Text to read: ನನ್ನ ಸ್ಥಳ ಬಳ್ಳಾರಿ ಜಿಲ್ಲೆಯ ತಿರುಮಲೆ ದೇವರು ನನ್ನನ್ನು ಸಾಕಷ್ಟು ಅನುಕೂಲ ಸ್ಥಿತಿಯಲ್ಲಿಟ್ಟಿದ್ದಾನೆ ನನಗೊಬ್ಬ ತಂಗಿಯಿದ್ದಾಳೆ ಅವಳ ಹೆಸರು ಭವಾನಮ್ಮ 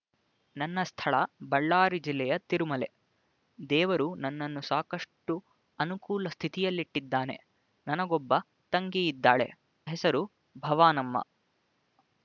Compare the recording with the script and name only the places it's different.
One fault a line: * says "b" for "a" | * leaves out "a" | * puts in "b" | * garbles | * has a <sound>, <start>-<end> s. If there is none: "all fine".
* leaves out "ಅವಳ"